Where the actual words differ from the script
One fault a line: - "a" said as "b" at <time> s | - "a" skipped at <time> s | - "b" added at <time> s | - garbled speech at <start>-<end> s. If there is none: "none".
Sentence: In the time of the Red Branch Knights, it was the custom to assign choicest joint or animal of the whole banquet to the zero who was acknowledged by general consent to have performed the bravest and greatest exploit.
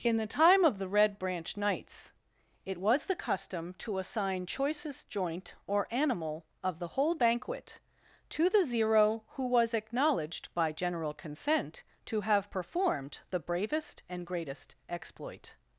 none